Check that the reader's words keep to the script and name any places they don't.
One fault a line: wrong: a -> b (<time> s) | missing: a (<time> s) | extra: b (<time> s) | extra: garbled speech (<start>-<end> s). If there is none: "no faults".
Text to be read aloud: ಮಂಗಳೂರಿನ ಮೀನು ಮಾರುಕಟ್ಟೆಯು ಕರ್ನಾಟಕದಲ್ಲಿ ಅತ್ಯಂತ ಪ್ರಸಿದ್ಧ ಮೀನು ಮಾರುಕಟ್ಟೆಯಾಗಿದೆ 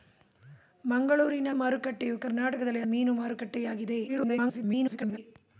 missing: ಮೀನು (1.5 s)
missing: ಅತ್ಯಂತ ಪ್ರಸಿದ್ಧ (2.8 s)
extra: garbled speech (4.1-5.2 s)